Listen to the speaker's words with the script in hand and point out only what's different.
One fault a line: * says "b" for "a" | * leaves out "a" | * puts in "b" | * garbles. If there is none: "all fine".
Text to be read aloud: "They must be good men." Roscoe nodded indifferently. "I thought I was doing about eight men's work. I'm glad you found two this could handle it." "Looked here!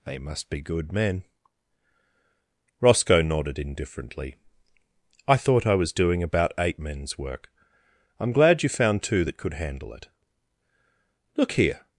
* says "that" for "this"
* says "Look" for "Looked"